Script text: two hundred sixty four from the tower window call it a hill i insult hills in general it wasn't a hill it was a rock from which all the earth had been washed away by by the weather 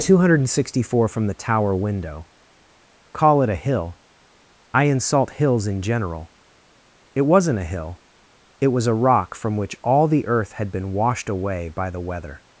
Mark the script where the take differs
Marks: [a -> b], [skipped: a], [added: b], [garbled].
two hundred sixty four from the tower window call it a hill i insult hills in general it wasn't a hill it was a rock from which all the earth had been washed away by [skipped: by] the weather